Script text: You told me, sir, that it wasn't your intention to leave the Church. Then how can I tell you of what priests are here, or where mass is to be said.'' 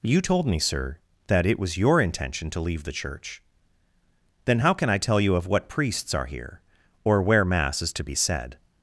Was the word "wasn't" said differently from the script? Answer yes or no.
yes